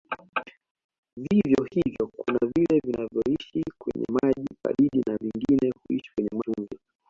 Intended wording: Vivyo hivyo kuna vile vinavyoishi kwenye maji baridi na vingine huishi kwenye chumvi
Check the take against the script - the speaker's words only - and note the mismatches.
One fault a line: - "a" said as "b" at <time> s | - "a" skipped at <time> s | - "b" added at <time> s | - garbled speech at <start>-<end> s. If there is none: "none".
none